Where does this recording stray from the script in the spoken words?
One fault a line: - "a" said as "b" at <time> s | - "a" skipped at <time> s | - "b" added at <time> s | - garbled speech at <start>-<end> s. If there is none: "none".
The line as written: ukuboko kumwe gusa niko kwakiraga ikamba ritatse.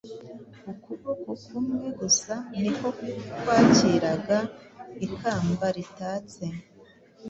none